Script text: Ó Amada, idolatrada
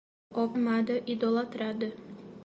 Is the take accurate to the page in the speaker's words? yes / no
yes